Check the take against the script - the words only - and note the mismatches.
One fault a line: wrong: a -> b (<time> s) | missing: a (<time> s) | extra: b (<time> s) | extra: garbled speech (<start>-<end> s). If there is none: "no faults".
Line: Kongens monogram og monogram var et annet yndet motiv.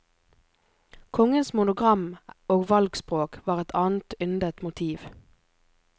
wrong: monogram -> valgspråk (2.7 s)